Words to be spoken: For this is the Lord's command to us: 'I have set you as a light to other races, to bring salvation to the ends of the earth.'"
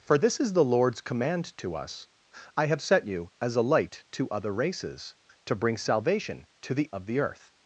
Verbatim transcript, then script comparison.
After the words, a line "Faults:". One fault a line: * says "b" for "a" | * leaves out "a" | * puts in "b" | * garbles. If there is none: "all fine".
For this is the Lord's command to us: 'I have set you as a light to other races, to bring salvation to the of the earth.'"
Faults:
* leaves out "ends"